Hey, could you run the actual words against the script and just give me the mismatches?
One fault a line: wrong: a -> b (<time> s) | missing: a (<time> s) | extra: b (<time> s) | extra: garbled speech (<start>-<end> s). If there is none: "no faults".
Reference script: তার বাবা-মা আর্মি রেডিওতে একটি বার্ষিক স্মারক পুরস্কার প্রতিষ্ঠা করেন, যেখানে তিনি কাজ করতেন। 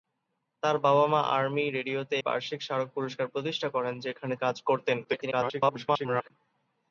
missing: একটি (2.2 s)
missing: তিনি (4.3 s)
extra: garbled speech (5.0-6.3 s)